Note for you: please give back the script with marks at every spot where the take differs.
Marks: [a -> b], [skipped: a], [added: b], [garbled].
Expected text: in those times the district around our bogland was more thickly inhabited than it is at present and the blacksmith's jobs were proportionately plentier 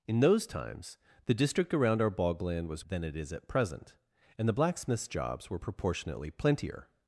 in those times the district around our bogland was [skipped: more thickly inhabited] than it is at present and the blacksmith's jobs were proportionately plentier